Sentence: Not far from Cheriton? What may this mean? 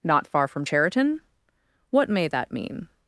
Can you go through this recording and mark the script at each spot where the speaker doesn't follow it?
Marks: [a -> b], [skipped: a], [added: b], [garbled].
Not far from Cheriton? What may [this -> that] mean?